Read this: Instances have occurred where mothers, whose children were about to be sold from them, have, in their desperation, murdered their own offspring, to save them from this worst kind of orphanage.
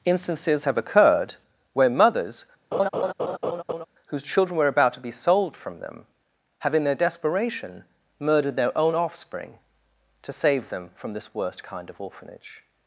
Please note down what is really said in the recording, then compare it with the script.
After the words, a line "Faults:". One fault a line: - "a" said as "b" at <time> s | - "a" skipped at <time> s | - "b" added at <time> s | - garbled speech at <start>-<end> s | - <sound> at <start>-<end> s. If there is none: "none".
Instances have occurred where mothers, whose children were about to be sold from them, have, in their desperation, murdered their own offspring, to save them from this worst kind of orphanage.
Faults:
- laugh at 2.7-3.9 s